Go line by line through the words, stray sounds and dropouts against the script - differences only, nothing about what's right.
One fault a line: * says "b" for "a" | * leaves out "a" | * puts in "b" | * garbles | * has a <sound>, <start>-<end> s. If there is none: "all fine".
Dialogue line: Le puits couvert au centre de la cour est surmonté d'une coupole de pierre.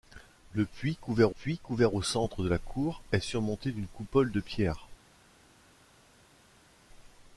* puts in "puits couvert"